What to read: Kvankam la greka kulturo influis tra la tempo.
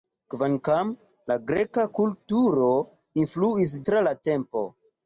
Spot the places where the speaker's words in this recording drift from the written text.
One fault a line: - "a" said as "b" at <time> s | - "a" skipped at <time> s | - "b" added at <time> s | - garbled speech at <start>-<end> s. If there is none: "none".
none